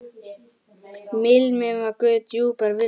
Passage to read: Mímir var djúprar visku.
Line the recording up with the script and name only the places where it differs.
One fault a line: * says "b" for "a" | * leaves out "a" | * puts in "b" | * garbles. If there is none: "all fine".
* puts in "guð"